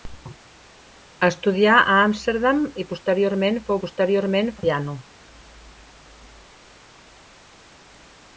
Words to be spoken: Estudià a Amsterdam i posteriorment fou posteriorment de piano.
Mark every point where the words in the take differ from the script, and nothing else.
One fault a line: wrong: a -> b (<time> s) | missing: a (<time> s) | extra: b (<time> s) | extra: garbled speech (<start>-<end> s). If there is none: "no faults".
no faults